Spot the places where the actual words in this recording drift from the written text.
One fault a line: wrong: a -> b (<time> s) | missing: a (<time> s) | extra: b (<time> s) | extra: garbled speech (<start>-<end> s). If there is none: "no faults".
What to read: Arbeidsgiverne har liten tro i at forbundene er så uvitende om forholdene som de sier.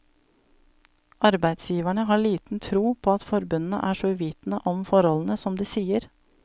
wrong: i -> på (3.0 s)